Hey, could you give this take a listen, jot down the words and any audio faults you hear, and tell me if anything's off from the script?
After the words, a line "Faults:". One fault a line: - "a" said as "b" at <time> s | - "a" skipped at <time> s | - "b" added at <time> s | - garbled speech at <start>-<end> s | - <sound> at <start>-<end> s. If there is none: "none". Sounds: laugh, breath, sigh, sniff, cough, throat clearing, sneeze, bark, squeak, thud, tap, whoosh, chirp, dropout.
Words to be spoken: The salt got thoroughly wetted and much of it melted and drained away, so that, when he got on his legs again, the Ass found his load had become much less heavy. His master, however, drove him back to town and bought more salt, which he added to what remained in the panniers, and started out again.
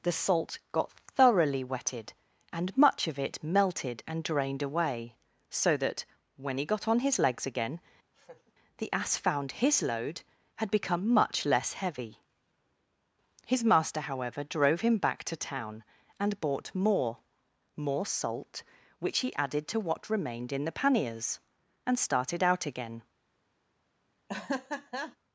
The salt got thoroughly wetted and much of it melted and drained away, so that, when he got on his legs again, the Ass found his load had become much less heavy. His master, however, drove him back to town and bought more more salt, which he added to what remained in the panniers, and started out again.
Faults:
- laugh at 8.1-8.5 s
- "more" added at 17.8 s
- laugh at 24.3-25.2 s